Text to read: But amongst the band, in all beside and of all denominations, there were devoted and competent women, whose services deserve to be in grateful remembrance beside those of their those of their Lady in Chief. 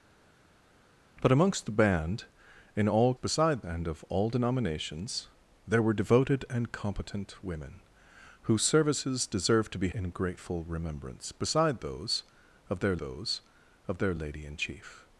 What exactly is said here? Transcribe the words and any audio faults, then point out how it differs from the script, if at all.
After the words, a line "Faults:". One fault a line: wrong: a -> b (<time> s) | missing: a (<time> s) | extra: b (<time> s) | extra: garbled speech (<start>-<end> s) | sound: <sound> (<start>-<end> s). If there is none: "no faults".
But amongst the band, in all beside and of all denominations, there were devoted and competent women, whose services deserve to be in grateful remembrance beside those of their those of their Lady in Chief.
Faults:
no faults